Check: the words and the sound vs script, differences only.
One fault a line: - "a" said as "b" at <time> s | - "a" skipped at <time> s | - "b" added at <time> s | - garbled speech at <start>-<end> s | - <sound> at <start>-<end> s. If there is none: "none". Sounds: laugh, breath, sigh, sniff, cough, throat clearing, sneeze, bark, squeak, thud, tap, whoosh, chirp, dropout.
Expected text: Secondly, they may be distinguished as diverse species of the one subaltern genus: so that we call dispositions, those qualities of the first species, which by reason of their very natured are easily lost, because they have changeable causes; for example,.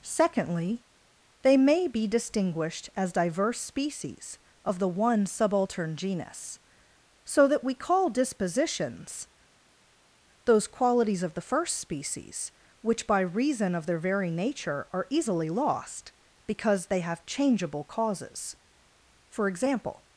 - "natured" said as "nature" at 14.3 s